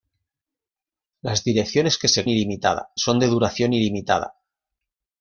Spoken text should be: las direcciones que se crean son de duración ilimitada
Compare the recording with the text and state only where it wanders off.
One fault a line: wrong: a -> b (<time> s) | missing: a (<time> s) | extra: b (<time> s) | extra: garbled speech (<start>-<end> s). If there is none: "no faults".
wrong: crean -> ilimitada (2.3 s)